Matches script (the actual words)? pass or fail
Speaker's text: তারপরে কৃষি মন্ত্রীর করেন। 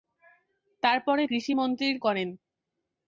pass